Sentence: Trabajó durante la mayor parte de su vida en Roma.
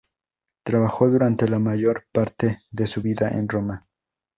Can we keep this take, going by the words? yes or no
yes